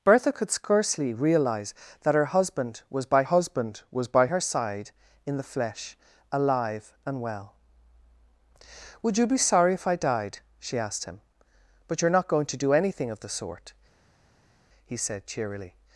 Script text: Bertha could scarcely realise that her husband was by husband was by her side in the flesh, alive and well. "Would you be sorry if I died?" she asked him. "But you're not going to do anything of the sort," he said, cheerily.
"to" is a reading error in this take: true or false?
false